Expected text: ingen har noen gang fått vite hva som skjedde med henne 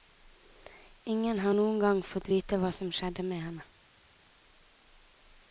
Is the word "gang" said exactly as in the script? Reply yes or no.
yes